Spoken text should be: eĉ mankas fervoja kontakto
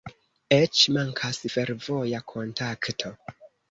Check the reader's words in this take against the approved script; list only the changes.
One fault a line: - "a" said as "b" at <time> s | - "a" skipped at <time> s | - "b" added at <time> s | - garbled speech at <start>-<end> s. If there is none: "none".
none